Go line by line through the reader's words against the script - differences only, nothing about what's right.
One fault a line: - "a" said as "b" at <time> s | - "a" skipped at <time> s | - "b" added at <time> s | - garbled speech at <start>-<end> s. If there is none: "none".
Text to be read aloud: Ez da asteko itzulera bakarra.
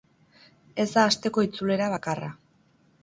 none